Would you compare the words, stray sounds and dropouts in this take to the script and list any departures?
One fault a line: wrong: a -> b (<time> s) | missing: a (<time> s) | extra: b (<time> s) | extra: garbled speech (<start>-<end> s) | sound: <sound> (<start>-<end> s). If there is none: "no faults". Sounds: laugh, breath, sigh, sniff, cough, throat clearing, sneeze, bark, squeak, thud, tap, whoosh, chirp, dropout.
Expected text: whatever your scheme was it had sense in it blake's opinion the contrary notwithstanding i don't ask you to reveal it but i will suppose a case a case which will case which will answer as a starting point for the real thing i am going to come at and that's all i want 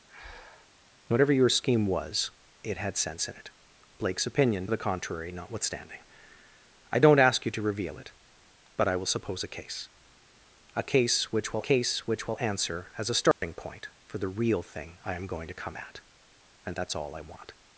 sound: breath (0.1-0.7 s)
sound: dropout (13.3-13.4 s)